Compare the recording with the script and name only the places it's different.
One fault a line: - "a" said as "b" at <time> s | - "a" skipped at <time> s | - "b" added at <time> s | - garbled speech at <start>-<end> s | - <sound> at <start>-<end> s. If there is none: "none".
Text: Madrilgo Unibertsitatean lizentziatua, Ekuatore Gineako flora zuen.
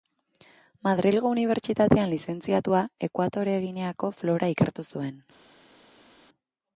- "ikertu" added at 4.6 s